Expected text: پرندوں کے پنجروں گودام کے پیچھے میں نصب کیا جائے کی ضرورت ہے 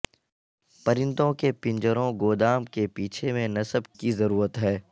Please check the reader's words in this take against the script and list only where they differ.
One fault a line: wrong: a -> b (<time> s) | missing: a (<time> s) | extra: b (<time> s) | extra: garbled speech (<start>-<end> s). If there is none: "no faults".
missing: کیا جائے (3.9 s)